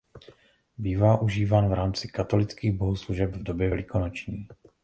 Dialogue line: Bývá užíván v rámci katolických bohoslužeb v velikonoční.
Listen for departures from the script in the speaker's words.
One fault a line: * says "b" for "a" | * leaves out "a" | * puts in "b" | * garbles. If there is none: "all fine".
* puts in "době"